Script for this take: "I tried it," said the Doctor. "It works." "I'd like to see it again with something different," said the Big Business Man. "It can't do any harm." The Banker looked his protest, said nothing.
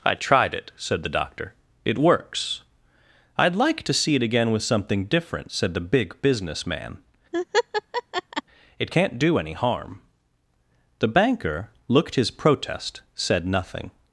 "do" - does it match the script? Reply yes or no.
yes